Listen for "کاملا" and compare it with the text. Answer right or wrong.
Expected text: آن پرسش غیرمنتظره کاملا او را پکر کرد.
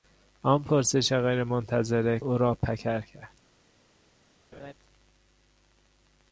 wrong